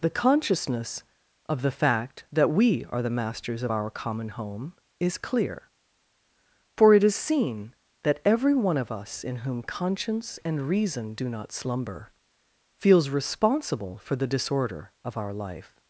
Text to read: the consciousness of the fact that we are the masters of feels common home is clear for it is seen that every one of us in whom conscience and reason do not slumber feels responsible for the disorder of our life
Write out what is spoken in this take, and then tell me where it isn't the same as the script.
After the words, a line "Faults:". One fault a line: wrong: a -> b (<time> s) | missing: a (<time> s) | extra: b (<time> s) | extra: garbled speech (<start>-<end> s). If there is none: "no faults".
the consciousness of the fact that we are the masters of our common home is clear for it is seen that every one of us in whom conscience and reason do not slumber feels responsible for the disorder of our life
Faults:
wrong: feels -> our (3.7 s)